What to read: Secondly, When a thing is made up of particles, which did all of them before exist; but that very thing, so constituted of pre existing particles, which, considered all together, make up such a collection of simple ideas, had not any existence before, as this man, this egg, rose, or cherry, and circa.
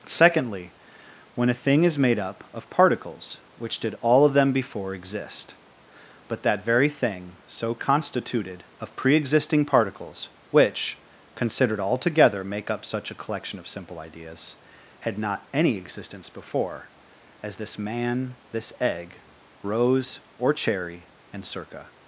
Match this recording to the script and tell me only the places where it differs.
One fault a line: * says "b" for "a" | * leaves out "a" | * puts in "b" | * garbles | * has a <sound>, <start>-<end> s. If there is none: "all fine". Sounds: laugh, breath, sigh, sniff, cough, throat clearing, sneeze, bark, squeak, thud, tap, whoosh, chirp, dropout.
all fine